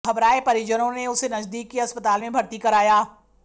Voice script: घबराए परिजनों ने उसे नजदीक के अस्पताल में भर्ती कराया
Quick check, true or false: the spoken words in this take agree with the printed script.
true